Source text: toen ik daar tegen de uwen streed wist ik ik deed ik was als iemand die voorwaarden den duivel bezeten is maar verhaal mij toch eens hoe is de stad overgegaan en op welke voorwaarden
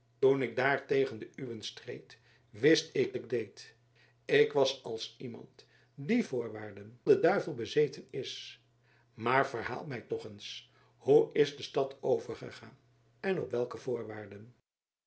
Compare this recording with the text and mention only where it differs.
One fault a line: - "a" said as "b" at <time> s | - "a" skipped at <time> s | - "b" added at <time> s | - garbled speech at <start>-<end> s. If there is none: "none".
none